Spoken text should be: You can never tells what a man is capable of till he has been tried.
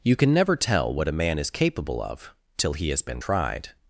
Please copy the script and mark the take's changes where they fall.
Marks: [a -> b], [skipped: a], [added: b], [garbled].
You can never [tells -> tell] what a man is capable of till he has been tried.